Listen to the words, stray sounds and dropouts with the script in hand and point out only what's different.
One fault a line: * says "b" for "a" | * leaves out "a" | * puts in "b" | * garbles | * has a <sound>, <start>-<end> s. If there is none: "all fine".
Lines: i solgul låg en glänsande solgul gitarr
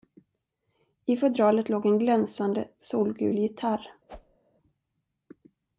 * says "fodralet" for "solgul"
* has a whoosh, 4.1-4.4 s